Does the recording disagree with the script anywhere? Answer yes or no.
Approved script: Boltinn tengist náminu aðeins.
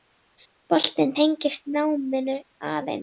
no